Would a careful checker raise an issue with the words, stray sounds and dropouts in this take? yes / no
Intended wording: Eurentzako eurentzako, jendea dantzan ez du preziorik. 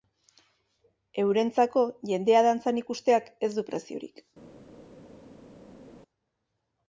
yes